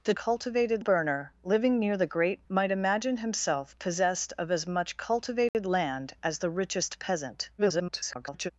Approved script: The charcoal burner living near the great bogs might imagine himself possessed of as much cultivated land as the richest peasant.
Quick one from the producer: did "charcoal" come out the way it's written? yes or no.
no